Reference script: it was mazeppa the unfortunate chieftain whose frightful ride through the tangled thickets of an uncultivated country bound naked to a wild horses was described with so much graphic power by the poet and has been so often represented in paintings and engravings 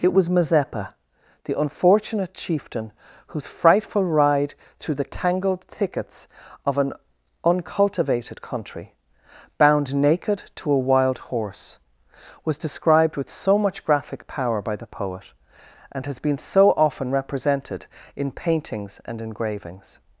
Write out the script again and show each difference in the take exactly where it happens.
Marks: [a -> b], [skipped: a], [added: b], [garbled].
it was mazeppa the unfortunate chieftain whose frightful ride through the tangled thickets of an uncultivated country bound naked to a wild [horses -> horse] was described with so much graphic power by the poet and has been so often represented in paintings and engravings